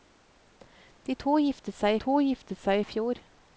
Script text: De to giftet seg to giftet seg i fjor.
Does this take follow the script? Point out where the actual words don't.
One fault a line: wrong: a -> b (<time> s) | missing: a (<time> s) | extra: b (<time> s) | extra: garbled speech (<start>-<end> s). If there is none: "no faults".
no faults